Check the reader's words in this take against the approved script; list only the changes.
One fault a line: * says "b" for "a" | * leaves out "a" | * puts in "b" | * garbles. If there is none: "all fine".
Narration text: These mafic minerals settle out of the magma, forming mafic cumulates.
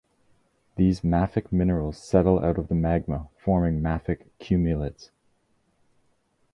all fine